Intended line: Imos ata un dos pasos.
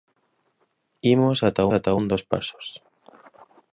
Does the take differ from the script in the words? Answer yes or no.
yes